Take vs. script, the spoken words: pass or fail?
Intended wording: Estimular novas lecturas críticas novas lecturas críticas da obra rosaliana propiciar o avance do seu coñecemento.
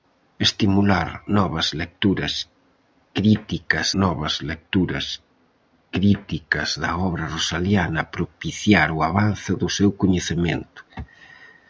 pass